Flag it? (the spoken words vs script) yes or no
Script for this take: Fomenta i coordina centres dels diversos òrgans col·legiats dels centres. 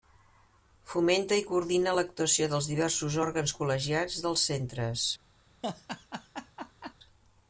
yes